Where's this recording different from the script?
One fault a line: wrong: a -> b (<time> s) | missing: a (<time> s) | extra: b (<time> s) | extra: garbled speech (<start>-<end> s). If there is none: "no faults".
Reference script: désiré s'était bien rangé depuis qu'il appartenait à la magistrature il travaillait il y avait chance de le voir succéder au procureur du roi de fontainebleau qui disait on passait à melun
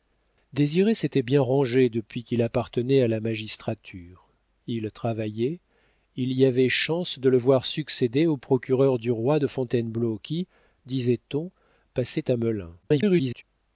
extra: garbled speech (12.8-13.4 s)